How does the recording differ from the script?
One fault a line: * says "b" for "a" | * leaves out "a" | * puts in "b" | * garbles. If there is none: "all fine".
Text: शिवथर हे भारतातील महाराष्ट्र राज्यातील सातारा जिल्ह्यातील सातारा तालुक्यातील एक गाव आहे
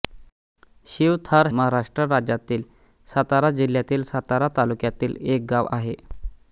* leaves out "हे भारतातील"